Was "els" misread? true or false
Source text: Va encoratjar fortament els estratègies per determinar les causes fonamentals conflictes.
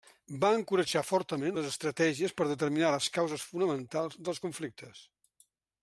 true